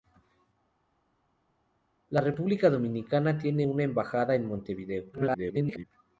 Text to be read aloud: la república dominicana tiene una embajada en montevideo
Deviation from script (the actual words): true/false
true